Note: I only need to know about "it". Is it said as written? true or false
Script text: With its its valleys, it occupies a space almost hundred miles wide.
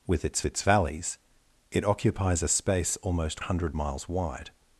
true